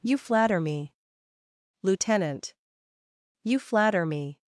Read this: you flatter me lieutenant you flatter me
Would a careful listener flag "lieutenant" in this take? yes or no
no